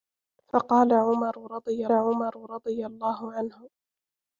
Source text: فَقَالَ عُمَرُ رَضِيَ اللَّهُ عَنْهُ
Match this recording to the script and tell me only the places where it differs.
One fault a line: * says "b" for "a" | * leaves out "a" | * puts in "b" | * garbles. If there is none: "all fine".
* puts in "عُمَرُ رَضِيَ"